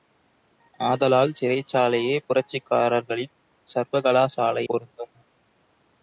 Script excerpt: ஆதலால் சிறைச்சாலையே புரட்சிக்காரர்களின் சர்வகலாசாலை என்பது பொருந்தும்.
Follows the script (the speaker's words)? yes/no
no